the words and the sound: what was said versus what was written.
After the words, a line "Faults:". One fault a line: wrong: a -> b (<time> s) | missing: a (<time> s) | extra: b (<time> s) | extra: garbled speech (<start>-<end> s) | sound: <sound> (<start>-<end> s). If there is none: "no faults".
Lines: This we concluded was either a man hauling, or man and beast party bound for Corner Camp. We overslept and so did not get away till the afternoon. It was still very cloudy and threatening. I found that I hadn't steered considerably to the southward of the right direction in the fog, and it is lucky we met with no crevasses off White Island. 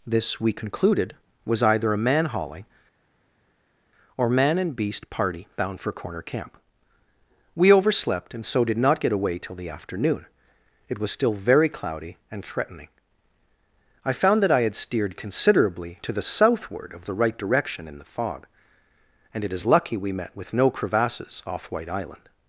This we concluded was either a man hauling, or man and beast party bound for Corner Camp. We overslept and so did not get away till the afternoon. It was still very cloudy and threatening. I found that I had steered considerably to the southward of the right direction in the fog, and it is lucky we met with no crevasses off White Island.
Faults:
wrong: hadn't -> had (14.6 s)